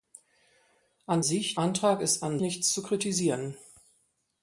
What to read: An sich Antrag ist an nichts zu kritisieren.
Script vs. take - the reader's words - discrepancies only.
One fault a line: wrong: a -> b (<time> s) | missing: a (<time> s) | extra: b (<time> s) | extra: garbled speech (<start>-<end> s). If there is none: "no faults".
no faults